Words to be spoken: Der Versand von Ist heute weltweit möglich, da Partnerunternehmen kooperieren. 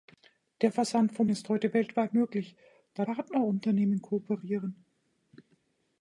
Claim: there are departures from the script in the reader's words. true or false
false